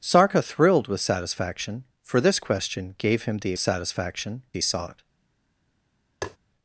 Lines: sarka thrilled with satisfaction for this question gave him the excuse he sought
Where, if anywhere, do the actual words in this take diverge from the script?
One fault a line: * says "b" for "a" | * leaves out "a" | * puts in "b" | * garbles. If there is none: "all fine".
* says "satisfaction" for "excuse"